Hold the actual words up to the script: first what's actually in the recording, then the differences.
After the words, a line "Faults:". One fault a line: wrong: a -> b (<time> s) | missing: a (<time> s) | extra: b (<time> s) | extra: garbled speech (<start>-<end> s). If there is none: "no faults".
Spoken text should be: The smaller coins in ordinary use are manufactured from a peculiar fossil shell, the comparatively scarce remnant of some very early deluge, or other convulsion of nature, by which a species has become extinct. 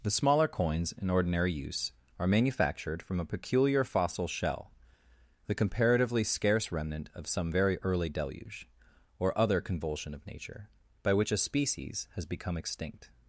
The smaller coins in ordinary use are manufactured from a peculiar fossil shell, the comparatively scarce remnant of some very early deluge, or other convulsion of nature, by which a species has become extinct.
Faults:
no faults